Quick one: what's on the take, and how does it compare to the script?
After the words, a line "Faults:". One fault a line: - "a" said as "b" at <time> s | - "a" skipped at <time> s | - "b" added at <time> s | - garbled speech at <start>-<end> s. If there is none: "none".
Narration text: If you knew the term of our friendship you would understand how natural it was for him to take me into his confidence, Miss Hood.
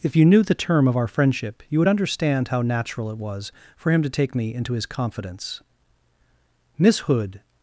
If you knew the term of our friendship you would understand how natural it was for him to take me into his confidence, Miss Hood.
Faults:
none